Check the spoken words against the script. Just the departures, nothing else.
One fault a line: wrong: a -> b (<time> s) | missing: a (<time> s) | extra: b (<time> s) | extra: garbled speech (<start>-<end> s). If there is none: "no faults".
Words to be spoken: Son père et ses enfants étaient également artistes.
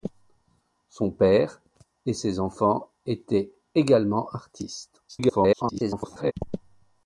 extra: garbled speech (5.1-6.3 s)